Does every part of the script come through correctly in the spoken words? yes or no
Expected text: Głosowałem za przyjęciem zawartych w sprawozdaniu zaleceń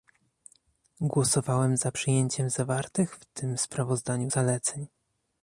no